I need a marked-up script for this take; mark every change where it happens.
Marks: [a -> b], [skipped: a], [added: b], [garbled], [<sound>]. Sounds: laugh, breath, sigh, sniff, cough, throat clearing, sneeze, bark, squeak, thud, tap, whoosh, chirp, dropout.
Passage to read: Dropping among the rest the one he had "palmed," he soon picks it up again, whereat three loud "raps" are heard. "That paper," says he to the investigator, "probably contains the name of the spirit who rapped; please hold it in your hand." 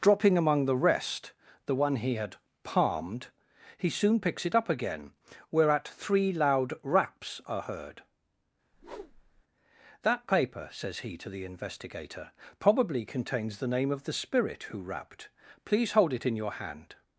Dropping among the rest the one he had "palmed," he soon picks it up again, whereat three loud "raps" are heard. [whoosh] "That paper," says he to the investigator, "probably contains the name of the spirit who rapped; please hold it in your hand."